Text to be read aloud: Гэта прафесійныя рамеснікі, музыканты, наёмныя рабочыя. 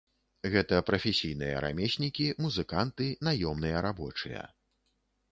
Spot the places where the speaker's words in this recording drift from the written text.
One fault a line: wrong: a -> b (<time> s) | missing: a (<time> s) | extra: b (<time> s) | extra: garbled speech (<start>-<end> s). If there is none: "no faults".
no faults